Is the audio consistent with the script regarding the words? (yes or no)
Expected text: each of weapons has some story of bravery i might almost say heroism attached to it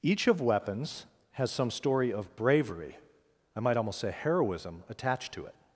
yes